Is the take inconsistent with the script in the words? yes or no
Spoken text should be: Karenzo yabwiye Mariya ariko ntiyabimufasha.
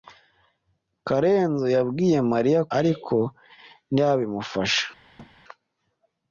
no